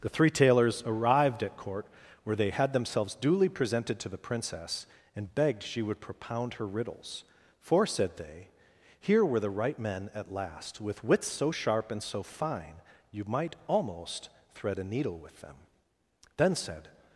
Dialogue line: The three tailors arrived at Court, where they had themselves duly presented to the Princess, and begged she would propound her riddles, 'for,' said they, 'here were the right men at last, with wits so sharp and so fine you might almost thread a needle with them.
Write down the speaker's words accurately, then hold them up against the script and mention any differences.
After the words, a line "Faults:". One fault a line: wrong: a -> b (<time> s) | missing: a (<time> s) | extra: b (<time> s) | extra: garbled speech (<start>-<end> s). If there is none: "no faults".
The three tailors arrived at Court, where they had themselves duly presented to the Princess, and begged she would propound her riddles, 'for,' said they, 'here were the right men at last, with wits so sharp and so fine you might almost thread a needle with them. Then said
Faults:
extra: Then said (16.4 s)